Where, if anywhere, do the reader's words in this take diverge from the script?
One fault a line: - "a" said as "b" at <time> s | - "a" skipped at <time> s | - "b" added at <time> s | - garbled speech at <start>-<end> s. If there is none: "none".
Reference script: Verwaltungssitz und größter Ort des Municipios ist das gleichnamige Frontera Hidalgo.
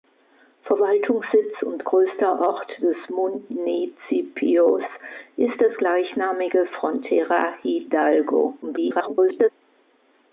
- garbled speech at 8.6-9.5 s